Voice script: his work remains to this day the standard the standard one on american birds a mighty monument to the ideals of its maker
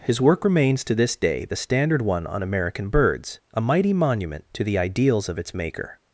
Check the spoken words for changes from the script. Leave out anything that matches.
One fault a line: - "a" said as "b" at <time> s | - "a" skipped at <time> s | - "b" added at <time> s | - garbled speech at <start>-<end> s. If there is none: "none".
- "the standard" skipped at 2.0 s